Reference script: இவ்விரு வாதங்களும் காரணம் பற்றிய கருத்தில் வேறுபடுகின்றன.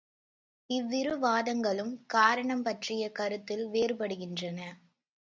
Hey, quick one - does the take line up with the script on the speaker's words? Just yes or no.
yes